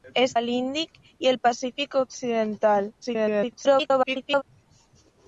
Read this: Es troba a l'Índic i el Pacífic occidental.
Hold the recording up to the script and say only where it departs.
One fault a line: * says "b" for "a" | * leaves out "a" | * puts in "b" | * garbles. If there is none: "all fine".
* leaves out "troba"
* garbles